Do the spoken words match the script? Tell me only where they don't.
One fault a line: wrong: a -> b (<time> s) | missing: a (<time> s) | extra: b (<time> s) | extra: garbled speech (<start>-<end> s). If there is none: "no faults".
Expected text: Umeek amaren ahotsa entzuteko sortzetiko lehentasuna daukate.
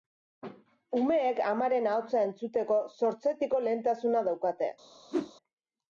no faults